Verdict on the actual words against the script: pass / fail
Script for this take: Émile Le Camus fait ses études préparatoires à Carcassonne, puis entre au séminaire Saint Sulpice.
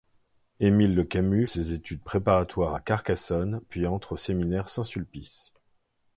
fail